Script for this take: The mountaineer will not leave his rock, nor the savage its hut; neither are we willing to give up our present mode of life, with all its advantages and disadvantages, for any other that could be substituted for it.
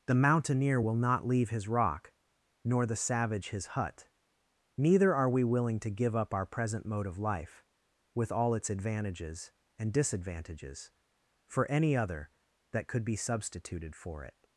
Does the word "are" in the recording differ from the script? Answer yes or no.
no